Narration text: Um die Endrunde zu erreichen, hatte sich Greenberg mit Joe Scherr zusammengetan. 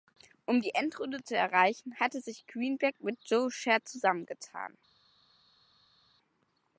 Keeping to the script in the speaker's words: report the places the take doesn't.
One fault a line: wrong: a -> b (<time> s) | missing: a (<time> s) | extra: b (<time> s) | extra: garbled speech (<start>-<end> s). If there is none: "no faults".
no faults